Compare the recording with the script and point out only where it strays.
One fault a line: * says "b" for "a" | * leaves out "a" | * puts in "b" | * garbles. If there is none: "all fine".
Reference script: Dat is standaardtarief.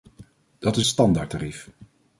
all fine